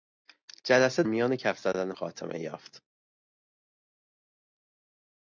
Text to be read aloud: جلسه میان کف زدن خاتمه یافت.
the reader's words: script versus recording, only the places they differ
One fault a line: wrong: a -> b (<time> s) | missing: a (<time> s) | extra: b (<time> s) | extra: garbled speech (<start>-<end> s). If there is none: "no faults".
no faults